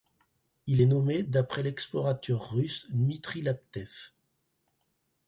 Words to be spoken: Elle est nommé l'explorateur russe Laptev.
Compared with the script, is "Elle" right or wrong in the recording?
wrong